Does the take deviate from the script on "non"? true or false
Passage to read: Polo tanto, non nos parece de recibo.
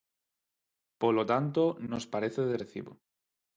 true